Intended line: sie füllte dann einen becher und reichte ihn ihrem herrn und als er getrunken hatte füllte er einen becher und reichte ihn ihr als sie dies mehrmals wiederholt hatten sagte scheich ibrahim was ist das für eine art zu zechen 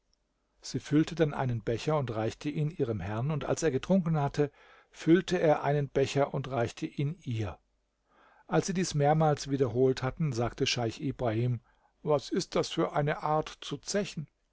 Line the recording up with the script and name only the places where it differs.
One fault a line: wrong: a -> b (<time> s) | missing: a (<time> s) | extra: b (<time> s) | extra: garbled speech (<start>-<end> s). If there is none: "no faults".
no faults